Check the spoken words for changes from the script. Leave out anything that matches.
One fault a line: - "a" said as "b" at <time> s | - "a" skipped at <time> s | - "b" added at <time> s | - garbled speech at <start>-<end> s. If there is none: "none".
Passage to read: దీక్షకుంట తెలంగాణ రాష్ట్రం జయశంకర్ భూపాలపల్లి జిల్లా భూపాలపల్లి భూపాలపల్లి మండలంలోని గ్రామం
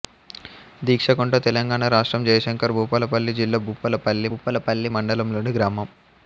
none